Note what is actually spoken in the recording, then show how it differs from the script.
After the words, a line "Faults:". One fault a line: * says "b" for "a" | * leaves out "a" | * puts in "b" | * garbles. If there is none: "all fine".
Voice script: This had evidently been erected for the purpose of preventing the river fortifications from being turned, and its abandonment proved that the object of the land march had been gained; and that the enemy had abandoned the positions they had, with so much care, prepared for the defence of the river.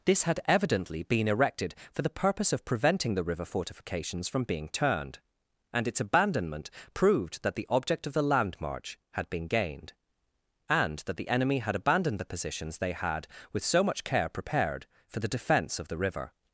This had evidently been erected for the purpose of preventing the river fortifications from being turned, and its abandonment proved that the object of the land march had been gained; and that the enemy had abandoned the positions they had, with so much care, prepared for the defence of the river.
Faults:
all fine